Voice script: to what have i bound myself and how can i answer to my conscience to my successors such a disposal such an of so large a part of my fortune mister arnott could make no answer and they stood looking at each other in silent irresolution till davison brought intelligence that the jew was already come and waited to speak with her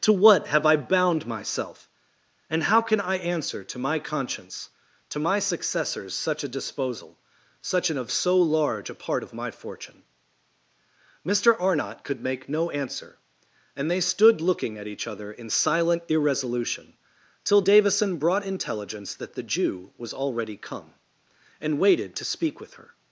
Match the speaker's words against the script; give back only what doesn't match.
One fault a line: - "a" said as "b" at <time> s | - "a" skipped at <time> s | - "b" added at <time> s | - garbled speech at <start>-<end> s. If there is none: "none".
none